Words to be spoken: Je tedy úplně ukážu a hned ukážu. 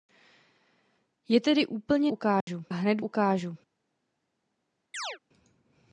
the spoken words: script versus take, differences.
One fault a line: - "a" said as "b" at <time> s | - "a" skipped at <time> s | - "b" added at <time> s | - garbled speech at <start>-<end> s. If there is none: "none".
none